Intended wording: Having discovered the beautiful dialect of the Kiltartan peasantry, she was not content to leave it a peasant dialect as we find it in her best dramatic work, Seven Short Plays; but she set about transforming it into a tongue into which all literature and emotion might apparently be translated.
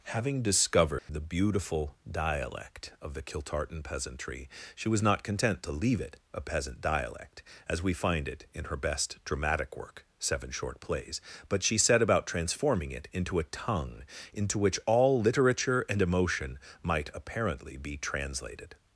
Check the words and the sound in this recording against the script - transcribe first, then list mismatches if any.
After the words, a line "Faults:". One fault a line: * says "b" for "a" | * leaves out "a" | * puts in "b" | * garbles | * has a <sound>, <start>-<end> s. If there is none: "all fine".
Having discovered the beautiful dialect of the Kiltartan peasantry, she was not content to leave it a peasant dialect as we find it in her best dramatic work, Seven Short Plays; but she set about transforming it into a tongue into which all literature and emotion might apparently be translated.
Faults:
* has a dropout, 1.0-1.1 s